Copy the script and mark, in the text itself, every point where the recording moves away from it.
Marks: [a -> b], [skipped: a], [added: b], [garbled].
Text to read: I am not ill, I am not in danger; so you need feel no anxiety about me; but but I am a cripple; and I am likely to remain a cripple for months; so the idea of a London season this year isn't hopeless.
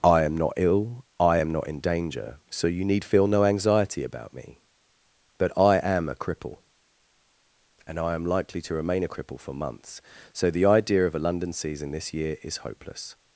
I am not ill, I am not in danger; so you need feel no anxiety about me; but [skipped: but] I am a cripple; and I am likely to remain a cripple for months; so the idea of a London season this year [isn't -> is] hopeless.